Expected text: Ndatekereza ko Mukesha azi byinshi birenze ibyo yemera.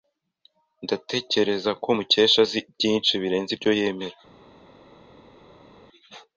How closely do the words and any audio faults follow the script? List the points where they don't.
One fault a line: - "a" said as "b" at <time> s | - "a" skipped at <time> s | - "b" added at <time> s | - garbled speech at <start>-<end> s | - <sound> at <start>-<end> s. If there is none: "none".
none